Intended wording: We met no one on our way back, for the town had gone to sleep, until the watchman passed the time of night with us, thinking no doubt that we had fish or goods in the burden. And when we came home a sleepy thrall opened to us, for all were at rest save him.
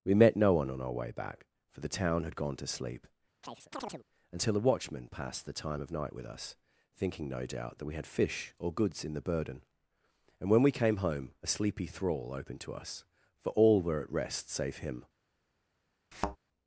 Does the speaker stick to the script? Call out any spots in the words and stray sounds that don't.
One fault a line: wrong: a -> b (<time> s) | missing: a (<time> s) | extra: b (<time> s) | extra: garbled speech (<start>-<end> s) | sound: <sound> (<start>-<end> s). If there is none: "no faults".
sound: chirp (3.4-4.0 s)
wrong: the -> a (4.6 s)
sound: thud (16.1-16.4 s)